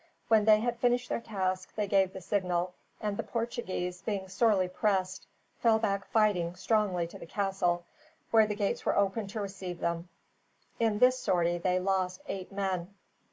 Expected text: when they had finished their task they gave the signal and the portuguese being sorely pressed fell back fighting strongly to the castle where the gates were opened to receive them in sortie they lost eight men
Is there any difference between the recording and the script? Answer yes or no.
yes